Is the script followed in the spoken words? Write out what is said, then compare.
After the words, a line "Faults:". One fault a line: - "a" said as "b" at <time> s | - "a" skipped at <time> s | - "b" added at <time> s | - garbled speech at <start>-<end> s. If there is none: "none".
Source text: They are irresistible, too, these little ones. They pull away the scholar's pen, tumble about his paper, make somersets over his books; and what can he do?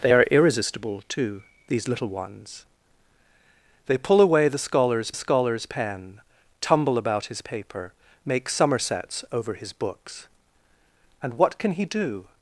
They are irresistible, too, these little ones. They pull away the scholar's scholar's pen, tumble about his paper, make somersets over his books; and what can he do?
Faults:
- "scholar's" added at 5.1 s